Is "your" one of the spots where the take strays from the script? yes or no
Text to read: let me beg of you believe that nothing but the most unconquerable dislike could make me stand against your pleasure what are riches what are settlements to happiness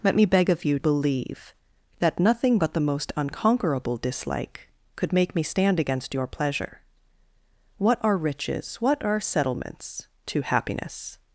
no